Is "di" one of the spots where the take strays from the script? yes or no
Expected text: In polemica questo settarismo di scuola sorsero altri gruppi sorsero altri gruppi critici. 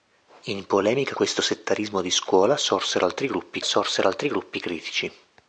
no